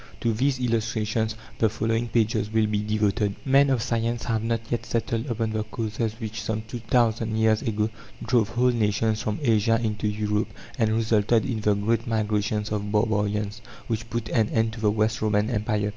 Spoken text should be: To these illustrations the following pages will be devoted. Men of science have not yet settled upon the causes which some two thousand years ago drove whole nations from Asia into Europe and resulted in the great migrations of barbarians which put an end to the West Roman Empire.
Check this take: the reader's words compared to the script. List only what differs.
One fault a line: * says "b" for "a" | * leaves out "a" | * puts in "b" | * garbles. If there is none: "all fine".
all fine